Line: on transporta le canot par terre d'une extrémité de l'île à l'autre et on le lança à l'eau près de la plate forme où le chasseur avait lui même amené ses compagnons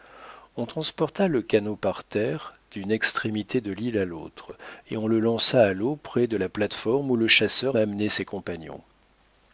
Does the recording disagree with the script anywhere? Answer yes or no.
yes